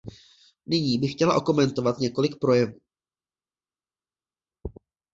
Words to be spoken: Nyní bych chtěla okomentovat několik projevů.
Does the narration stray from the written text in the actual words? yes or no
no